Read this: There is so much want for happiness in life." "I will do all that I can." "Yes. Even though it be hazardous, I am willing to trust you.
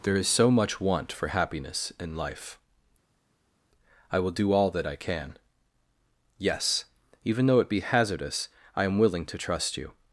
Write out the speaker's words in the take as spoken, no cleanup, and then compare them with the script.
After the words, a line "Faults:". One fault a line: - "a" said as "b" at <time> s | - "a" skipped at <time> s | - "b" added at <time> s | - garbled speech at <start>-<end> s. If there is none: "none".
There is so much want for happiness in life." "I will do all that I can." "Yes. Even though it be hazardous, I am willing to trust you.
Faults:
none